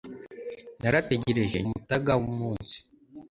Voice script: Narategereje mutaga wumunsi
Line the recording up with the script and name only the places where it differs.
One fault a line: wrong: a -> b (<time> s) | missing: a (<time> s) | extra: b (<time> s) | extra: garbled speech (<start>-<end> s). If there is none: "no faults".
no faults